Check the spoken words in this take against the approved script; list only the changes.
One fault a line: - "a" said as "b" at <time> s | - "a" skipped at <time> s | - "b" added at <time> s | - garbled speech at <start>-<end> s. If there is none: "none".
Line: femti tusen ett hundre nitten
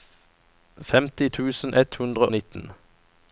none